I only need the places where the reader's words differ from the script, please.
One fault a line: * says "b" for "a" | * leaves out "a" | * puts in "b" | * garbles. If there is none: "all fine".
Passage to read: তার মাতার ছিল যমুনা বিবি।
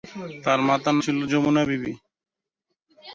all fine